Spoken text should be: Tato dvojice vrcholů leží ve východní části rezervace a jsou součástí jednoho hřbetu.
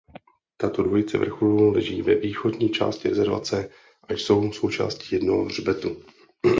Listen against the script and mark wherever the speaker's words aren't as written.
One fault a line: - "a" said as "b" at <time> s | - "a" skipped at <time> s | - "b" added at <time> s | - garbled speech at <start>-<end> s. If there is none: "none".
none